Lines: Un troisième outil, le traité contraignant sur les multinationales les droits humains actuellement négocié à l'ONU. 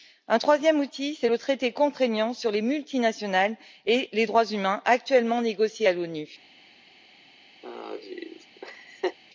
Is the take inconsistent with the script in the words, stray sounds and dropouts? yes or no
yes